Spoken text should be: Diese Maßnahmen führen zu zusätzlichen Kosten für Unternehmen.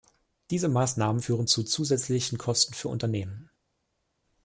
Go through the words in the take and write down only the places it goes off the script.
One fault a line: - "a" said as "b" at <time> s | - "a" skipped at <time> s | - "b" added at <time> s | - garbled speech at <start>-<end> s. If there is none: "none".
none